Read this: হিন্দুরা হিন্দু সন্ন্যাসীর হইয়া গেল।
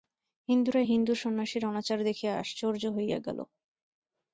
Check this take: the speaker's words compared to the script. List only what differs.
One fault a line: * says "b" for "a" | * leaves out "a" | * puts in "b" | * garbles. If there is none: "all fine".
* puts in "অনাচার দেখিয়া আশ্চর্য"